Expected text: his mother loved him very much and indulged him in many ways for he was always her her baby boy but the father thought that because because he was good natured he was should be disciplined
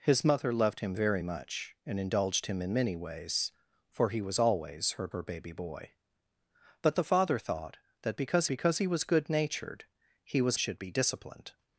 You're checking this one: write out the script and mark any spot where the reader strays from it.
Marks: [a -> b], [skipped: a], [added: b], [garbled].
his mother loved him very much and indulged him in many ways for he was always her her baby boy but the father thought that because because he was good natured he was should be disciplined